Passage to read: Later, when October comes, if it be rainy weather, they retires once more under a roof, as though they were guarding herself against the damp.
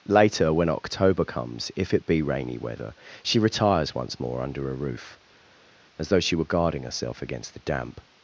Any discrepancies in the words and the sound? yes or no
yes